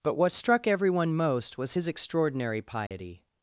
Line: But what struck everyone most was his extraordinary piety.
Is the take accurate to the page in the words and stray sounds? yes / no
no